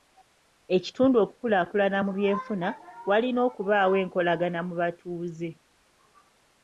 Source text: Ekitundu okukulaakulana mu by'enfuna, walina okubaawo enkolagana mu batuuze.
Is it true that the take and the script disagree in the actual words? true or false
false